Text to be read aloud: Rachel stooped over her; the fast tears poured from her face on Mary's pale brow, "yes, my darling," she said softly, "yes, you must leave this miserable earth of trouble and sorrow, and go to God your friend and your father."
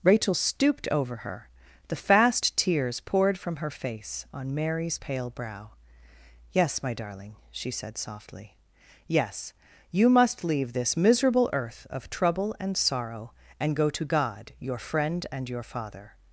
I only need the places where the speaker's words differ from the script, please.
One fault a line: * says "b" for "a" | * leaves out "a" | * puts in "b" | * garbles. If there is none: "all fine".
all fine